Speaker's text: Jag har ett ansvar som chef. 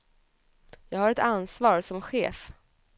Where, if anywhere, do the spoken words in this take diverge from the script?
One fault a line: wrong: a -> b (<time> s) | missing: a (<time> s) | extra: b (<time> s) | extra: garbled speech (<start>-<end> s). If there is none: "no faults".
no faults